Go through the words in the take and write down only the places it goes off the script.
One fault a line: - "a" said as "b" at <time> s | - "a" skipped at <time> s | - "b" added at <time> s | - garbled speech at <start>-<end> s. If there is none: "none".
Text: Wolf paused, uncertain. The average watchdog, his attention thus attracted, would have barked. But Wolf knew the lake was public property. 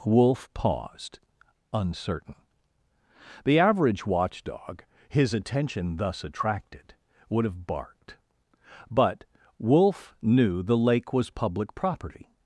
none